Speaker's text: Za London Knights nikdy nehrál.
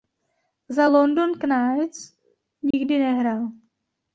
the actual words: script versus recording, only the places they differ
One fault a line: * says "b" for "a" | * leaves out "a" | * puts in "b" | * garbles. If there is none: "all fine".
all fine